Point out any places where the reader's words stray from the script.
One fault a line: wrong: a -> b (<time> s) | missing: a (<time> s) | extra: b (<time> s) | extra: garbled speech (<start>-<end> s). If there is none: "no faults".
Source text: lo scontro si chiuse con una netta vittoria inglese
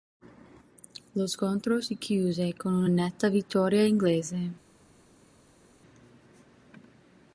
no faults